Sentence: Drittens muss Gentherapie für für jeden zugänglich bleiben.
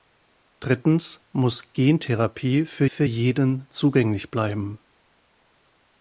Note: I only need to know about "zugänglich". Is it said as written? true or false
true